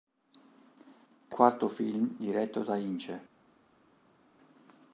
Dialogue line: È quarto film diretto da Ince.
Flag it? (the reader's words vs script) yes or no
no